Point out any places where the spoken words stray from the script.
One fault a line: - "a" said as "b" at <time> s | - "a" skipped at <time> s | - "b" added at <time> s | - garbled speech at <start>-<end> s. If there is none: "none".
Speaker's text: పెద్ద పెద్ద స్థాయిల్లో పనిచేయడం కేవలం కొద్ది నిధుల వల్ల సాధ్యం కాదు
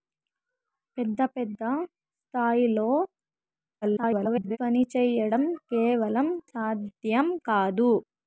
- garbled speech at 3.8-4.6 s
- "కొద్ది నిధుల వల్ల" skipped at 6.3 s